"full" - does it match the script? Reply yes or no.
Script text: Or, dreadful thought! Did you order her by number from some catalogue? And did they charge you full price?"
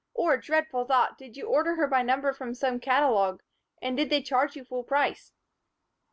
yes